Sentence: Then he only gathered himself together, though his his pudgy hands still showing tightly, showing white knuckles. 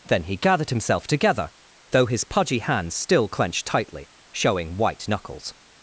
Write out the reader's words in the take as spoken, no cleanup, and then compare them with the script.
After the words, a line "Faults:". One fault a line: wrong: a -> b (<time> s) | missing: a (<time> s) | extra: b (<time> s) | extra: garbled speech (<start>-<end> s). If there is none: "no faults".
Then he gathered himself together, though his pudgy hands still clenched tightly, showing white knuckles.
Faults:
missing: only (0.4 s)
missing: his (2.2 s)
wrong: showing -> clenched (3.3 s)